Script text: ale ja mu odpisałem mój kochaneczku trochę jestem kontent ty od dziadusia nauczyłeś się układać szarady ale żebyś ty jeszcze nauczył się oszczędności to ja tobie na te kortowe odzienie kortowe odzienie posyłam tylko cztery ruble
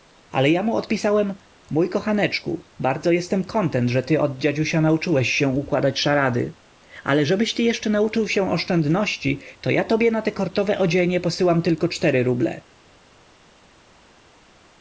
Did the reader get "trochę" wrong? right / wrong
wrong